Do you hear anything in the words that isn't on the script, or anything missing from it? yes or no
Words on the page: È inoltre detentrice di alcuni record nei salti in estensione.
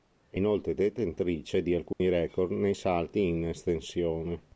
no